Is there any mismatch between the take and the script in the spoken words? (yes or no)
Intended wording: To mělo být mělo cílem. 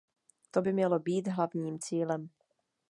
yes